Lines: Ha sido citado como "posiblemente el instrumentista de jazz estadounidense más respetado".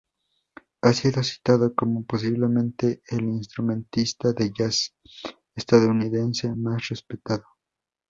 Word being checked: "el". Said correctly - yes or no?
yes